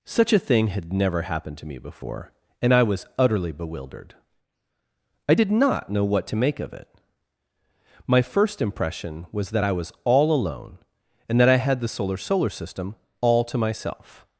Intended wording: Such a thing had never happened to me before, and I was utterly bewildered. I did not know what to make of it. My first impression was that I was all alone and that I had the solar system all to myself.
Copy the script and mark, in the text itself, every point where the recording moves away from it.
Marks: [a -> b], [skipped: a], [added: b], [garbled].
Such a thing had never happened to me before, and I was utterly bewildered. I did not know what to make of it. My first impression was that I was all alone and that I had the solar [added: solar] system all to myself.